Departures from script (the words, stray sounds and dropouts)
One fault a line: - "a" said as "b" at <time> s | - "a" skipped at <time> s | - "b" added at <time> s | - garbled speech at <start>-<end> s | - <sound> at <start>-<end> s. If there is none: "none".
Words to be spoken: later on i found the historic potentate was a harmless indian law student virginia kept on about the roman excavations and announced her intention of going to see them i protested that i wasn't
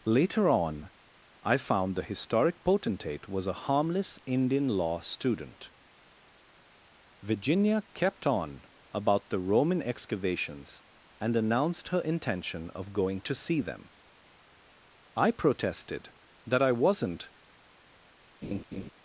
- laugh at 18.4-18.9 s